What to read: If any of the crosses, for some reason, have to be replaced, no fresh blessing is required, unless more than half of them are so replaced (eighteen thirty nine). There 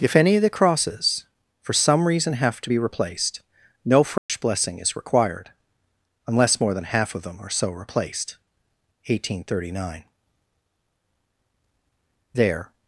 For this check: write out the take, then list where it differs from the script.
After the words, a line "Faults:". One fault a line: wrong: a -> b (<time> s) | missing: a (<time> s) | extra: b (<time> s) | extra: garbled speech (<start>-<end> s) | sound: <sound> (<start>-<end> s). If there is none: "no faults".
If any of the crosses, for some reason, have to be replaced, no fresh blessing is required, unless more than half of them are so replaced (eighteen thirty nine). There
Faults:
sound: dropout (4.2-4.3 s)